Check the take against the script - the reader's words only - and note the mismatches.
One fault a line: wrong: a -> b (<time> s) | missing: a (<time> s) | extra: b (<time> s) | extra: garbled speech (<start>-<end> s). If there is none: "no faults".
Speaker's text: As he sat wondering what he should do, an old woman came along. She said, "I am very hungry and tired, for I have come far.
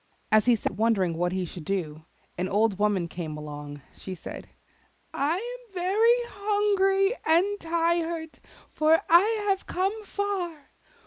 no faults